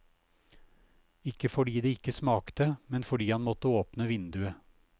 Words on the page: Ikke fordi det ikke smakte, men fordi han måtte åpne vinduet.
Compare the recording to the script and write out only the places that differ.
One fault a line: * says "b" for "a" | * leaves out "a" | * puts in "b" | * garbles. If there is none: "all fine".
all fine